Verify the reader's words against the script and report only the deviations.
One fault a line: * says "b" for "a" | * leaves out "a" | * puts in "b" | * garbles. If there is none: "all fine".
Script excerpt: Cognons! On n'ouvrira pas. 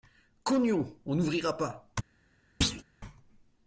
all fine